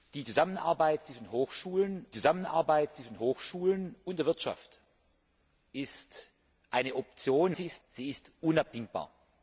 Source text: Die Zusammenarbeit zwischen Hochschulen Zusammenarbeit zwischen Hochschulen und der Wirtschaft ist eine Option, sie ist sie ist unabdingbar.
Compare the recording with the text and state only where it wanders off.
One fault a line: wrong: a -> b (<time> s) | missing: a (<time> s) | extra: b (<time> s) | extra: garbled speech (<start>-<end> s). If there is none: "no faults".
no faults